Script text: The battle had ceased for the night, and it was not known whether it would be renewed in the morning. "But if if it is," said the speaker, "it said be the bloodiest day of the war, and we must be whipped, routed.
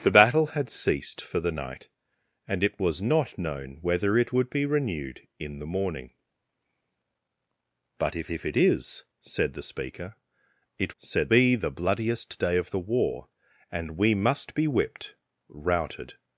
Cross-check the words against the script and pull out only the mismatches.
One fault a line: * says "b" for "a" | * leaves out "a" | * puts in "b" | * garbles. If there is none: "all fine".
all fine